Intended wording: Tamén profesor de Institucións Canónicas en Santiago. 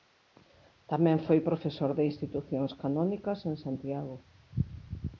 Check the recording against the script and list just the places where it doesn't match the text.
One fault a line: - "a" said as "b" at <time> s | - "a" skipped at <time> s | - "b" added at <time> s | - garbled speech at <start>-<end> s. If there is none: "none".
- "foi" added at 1.2 s